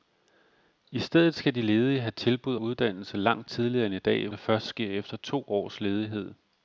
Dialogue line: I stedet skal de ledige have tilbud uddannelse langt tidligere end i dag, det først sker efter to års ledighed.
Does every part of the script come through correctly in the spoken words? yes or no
yes